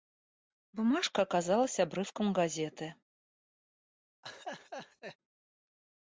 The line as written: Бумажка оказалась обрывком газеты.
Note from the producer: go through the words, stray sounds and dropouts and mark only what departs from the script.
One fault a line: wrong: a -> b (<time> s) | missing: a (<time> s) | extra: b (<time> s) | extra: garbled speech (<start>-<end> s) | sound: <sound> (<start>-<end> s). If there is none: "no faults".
sound: laugh (4.2-5.2 s)